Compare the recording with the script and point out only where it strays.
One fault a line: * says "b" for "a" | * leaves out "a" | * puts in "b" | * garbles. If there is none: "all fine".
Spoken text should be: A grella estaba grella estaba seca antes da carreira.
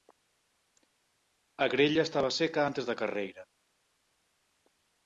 * leaves out "grella estaba"